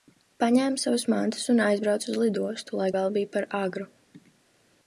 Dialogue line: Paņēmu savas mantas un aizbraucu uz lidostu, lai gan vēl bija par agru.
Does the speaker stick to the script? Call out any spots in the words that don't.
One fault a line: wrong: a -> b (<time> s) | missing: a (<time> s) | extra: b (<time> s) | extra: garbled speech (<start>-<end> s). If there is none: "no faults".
missing: gan (2.9 s)